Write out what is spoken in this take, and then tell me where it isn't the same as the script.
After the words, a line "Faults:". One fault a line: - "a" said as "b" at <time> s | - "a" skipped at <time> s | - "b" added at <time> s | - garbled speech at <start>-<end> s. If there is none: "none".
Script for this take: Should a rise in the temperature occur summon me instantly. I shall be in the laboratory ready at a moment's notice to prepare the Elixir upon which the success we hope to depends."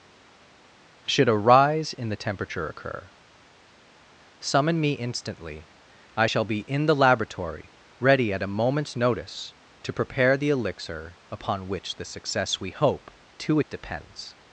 Should a rise in the temperature occur summon me instantly. I shall be in the laboratory ready at a moment's notice to prepare the Elixir upon which the success we hope to depends."
Faults:
none